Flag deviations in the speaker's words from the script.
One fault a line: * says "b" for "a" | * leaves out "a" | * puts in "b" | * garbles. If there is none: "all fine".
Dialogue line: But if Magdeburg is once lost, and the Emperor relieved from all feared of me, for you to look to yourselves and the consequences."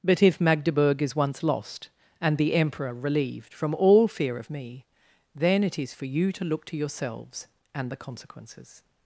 * says "fear" for "feared"
* puts in "then it is"